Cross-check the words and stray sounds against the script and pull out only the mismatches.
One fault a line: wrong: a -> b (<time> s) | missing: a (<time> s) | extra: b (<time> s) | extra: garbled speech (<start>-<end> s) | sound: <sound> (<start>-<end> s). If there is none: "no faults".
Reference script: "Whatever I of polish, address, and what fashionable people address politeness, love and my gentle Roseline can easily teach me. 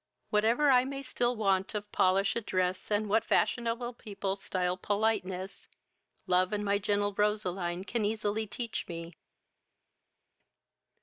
extra: may still want (0.8 s)
wrong: address -> stile (4.4 s)